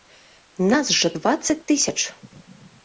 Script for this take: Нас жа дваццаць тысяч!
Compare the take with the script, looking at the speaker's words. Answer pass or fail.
pass